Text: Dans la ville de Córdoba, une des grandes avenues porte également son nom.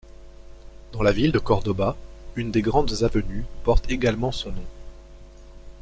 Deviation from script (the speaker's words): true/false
false